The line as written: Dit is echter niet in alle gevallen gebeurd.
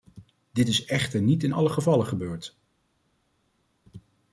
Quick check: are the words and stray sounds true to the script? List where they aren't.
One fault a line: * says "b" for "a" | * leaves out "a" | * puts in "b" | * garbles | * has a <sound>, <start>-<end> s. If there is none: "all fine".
all fine